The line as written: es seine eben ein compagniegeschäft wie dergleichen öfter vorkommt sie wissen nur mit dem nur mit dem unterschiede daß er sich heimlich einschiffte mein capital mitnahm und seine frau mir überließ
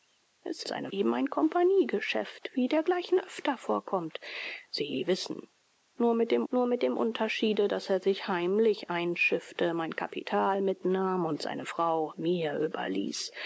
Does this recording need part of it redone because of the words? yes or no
no